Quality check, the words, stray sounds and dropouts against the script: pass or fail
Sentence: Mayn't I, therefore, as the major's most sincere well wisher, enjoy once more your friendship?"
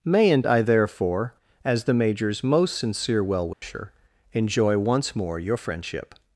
fail